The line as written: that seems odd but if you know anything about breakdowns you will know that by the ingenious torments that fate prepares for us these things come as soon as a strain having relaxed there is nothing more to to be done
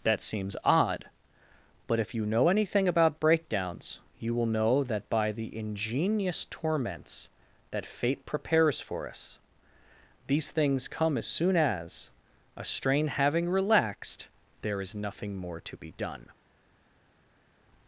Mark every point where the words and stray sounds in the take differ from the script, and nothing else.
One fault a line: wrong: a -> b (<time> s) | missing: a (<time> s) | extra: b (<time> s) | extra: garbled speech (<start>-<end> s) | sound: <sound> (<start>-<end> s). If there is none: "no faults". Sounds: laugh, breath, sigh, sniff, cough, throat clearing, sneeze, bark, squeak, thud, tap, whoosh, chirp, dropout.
missing: to (15.8 s)